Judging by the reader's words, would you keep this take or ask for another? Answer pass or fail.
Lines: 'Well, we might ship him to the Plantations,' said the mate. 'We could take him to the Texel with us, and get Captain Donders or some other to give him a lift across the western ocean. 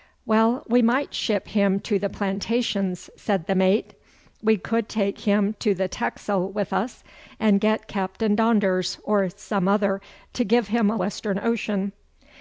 fail